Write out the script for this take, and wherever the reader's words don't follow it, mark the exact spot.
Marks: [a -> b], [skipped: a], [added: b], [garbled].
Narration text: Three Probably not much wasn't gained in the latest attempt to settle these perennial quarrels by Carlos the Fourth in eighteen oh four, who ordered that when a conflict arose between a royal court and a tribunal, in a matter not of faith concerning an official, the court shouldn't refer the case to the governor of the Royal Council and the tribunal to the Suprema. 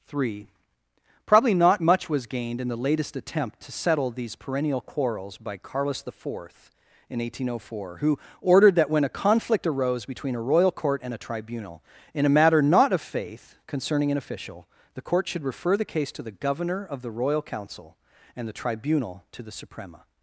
Three Probably not much [wasn't -> was] gained in the latest attempt to settle these perennial quarrels by Carlos the Fourth in eighteen oh four, who ordered that when a conflict arose between a royal court and a tribunal, in a matter not of faith concerning an official, the court [shouldn't -> should] refer the case to the governor of the Royal Council and the tribunal to the Suprema.